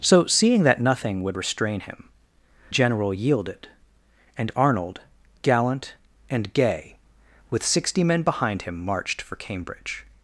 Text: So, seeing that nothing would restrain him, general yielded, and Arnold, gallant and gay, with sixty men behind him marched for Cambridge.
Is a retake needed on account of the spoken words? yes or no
no